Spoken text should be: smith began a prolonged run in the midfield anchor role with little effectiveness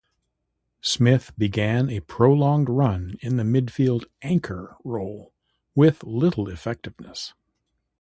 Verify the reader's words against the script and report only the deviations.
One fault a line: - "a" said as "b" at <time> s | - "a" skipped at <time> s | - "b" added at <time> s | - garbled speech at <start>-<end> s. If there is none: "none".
none